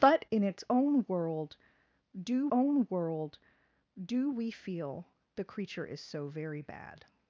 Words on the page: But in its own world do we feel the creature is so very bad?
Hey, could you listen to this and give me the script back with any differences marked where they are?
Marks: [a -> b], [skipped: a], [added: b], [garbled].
But in its own world do [added: own world do] we feel the creature is so very bad?